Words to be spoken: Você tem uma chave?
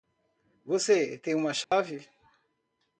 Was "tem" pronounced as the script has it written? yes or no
yes